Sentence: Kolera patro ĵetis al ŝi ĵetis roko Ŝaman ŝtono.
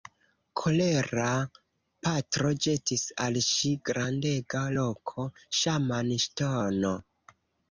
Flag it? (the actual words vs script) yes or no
yes